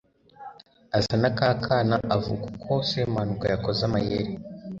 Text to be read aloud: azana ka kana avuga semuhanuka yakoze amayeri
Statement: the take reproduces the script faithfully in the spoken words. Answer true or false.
false